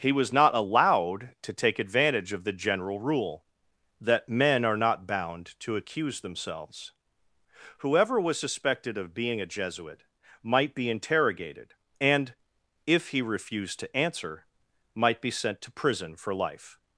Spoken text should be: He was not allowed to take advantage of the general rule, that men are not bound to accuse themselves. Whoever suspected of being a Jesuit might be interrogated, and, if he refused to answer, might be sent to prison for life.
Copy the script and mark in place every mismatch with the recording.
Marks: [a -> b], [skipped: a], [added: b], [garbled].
He was not allowed to take advantage of the general rule, that men are not bound to accuse themselves. Whoever [added: was] suspected of being a Jesuit might be interrogated, and, if he refused to answer, might be sent to prison for life.